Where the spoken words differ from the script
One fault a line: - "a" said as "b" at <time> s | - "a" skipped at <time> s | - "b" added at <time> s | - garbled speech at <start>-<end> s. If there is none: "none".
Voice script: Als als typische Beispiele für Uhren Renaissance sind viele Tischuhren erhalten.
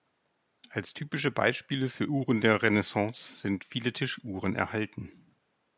- "als" skipped at 0.9 s
- "der" added at 2.4 s